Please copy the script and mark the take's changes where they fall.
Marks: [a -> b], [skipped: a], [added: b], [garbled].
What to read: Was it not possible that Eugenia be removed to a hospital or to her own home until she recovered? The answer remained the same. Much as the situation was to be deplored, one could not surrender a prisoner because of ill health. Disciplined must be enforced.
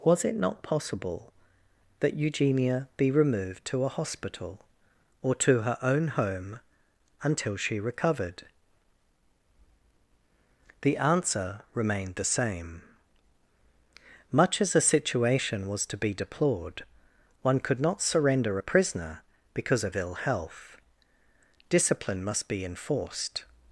Was it not possible that Eugenia be removed to a hospital or to her own home until she recovered? The answer remained the same. Much as the situation was to be deplored, one could not surrender a prisoner because of ill health. [Disciplined -> Discipline] must be enforced.